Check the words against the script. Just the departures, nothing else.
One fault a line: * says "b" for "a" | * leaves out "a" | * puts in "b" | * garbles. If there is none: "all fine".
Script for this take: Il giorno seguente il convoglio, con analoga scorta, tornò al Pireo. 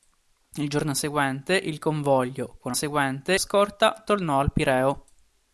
* says "seguente" for "analoga"